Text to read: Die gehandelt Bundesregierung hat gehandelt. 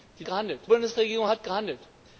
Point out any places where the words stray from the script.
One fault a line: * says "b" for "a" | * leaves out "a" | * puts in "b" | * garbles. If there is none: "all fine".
all fine